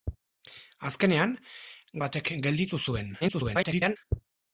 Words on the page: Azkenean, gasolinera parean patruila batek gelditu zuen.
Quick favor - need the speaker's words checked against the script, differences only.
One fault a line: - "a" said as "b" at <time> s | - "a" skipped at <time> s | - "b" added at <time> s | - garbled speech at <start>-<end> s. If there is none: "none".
- "gasolinera parean patruila" skipped at 1.4 s
- garbled speech at 3.2-4.0 s